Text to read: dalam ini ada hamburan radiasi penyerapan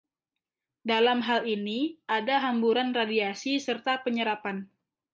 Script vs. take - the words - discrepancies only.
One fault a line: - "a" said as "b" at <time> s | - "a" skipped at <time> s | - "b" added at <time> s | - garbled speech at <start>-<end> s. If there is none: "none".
- "hal" added at 1.2 s
- "serta" added at 3.6 s